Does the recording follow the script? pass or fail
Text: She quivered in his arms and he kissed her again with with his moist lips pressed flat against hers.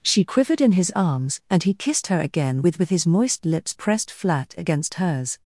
pass